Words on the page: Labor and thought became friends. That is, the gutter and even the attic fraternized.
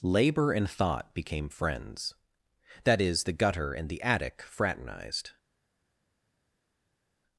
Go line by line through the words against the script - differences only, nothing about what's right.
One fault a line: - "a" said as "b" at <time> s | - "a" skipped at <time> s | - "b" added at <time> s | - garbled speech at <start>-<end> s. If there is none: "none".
- "even" skipped at 3.9 s